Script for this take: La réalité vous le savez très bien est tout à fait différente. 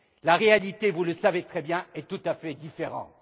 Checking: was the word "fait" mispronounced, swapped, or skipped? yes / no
no